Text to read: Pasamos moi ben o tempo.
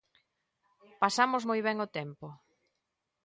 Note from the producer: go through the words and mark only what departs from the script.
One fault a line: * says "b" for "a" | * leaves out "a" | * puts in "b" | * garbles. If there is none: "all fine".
all fine